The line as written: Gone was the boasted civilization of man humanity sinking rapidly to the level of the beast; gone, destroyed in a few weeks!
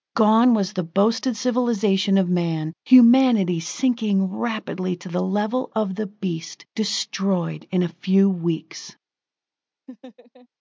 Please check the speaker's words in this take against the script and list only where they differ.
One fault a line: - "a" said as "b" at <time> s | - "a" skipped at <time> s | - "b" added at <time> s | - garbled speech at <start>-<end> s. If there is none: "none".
- "gone" skipped at 6.7 s